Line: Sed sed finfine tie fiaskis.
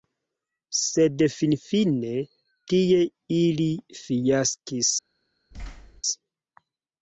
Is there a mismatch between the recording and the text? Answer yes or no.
yes